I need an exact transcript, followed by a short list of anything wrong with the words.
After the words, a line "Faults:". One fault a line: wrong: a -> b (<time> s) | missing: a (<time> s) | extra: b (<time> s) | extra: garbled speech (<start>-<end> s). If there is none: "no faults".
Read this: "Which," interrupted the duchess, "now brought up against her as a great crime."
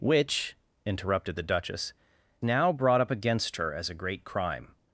"Which," interrupted the duchess, "now brought up against her as a great crime."
Faults:
no faults